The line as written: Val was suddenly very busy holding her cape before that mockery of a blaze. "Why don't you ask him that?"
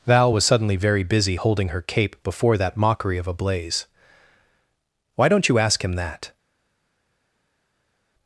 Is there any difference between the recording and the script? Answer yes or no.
no